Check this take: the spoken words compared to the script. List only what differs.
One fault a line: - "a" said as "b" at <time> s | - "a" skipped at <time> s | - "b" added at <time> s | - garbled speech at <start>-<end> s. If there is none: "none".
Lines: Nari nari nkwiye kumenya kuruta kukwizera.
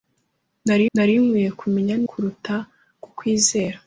none